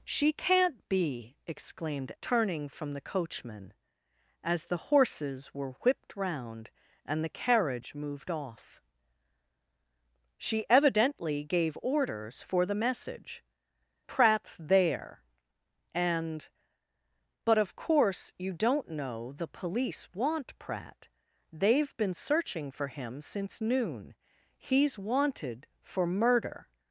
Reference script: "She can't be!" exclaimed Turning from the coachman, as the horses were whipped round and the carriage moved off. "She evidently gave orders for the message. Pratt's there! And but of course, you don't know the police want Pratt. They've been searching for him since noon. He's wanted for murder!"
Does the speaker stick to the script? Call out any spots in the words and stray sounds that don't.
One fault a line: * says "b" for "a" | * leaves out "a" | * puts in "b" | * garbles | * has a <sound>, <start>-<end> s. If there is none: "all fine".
all fine